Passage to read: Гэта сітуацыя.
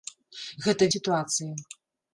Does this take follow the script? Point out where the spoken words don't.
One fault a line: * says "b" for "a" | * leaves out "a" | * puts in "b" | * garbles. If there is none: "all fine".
all fine